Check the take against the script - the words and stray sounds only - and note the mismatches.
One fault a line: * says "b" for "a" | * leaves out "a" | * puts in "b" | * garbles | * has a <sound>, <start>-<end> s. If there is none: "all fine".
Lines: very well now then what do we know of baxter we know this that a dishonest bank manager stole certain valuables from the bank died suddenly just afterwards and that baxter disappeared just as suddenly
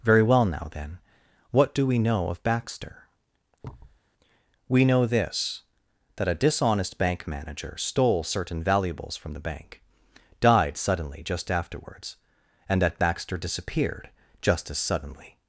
* has a thud, 3.6-4.0 s